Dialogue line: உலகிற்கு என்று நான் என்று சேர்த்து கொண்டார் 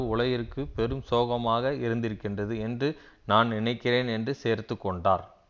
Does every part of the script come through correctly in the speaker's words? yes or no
no